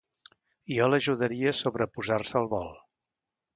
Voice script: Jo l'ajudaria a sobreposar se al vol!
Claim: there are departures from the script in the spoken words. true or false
false